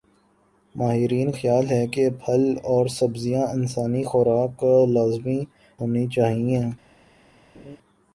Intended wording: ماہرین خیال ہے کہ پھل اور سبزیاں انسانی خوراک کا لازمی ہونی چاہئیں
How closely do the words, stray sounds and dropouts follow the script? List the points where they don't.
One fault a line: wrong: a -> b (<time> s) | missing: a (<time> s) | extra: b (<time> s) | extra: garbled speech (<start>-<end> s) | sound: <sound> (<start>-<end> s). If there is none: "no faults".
sound: laugh (7.5-7.8 s)